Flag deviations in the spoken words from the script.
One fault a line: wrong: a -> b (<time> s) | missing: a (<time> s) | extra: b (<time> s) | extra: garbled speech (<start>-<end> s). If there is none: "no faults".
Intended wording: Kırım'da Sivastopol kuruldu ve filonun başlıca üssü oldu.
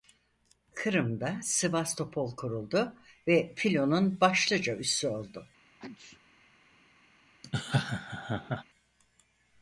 no faults